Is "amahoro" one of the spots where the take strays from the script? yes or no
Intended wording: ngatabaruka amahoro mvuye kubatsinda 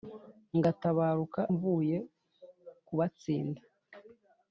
yes